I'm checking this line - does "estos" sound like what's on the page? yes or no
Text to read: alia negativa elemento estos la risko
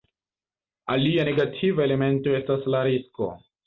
no